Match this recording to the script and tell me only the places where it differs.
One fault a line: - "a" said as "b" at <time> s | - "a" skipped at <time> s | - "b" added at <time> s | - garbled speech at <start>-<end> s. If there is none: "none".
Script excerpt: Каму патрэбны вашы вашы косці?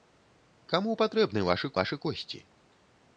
none